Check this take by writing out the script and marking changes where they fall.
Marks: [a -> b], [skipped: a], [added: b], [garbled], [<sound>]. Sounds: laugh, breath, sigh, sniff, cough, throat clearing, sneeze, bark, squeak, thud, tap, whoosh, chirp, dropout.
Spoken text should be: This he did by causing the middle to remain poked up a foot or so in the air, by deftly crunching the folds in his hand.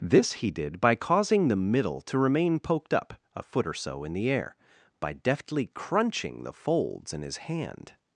This he did by causing the middle to remain poked up a foot or so in the air, by deftly crunching the folds in his hand.